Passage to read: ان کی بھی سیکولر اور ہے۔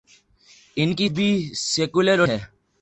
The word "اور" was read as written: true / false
true